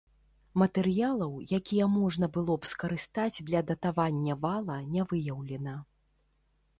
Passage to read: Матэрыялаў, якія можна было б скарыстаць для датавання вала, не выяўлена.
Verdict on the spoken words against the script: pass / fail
pass